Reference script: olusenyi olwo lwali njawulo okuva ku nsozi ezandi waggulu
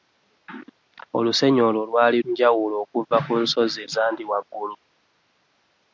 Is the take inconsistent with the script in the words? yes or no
no